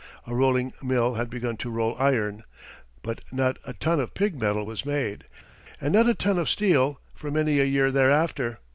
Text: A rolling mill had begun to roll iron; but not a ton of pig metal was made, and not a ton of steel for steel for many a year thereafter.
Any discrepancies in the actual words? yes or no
yes